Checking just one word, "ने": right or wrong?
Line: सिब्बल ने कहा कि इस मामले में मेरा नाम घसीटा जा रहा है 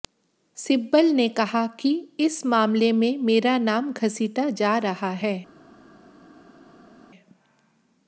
right